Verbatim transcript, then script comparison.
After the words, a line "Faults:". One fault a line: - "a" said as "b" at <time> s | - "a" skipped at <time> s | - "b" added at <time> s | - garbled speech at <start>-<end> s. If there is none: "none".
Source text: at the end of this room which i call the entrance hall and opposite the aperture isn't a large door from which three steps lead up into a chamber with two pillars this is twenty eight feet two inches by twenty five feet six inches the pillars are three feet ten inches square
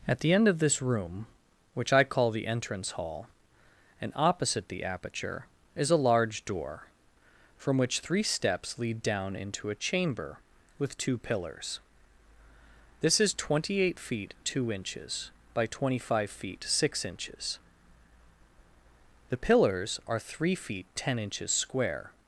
at the end of this room which i call the entrance hall and opposite the aperture is a large door from which three steps lead down into a chamber with two pillars this is twenty eight feet two inches by twenty five feet six inches the pillars are three feet ten inches square
Faults:
- "isn't" said as "is" at 5.8 s
- "up" said as "down" at 9.0 s